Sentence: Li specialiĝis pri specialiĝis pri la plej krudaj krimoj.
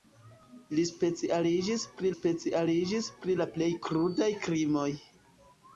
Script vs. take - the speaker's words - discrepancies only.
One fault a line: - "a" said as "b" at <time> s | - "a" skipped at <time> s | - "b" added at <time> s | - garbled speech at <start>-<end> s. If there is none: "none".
none